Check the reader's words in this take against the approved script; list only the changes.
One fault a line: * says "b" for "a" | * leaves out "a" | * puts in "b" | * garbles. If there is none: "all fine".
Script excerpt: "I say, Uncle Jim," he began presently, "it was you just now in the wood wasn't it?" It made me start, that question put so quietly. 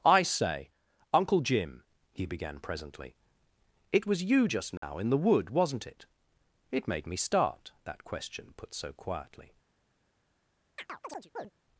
all fine